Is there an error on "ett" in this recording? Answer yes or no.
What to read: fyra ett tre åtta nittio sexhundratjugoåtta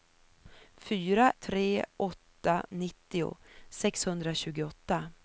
yes